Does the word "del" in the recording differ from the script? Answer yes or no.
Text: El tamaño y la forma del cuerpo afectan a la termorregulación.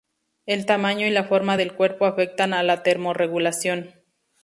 no